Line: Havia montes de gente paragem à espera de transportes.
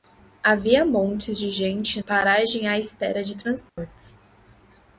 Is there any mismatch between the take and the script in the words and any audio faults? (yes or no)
yes